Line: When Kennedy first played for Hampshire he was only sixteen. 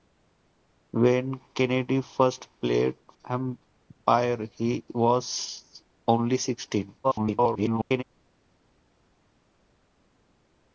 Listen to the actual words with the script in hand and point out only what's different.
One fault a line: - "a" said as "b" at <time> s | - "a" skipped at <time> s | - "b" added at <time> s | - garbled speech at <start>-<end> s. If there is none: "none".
- "for" skipped at 3.0 s
- garbled speech at 7.0-8.0 s